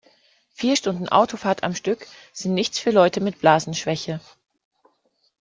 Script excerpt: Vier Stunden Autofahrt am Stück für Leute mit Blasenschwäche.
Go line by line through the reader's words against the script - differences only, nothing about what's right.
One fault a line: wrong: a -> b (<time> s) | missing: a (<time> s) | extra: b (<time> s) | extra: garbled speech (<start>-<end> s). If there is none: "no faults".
extra: sind nichts (2.3 s)